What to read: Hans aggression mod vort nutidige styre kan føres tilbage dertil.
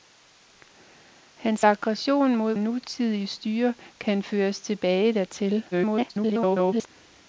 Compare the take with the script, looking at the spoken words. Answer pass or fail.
fail